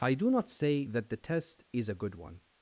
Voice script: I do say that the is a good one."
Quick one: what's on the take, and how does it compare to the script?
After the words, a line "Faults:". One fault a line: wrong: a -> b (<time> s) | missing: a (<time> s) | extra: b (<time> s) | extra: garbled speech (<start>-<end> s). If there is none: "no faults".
I do not say that the test is a good one."
Faults:
extra: not (0.3 s)
extra: test (1.2 s)